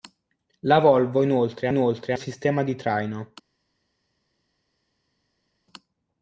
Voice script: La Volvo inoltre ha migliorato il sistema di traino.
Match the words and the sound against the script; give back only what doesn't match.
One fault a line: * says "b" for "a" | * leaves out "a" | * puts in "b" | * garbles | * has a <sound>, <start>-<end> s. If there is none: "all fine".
* says "inoltre" for "migliorato"